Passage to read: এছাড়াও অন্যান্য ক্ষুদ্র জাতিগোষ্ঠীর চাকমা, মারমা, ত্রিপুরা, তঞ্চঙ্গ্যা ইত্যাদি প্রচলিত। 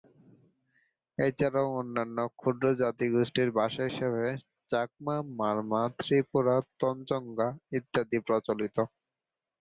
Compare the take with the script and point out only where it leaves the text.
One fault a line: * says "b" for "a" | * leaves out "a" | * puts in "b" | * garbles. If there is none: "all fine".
* puts in "ভাষা হিসেবে"